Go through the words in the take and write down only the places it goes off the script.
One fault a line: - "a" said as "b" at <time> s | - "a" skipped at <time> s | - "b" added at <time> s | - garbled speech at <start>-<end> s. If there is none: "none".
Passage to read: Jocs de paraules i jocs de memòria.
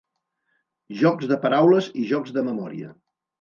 none